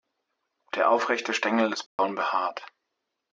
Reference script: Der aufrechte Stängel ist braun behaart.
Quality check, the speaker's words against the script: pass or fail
pass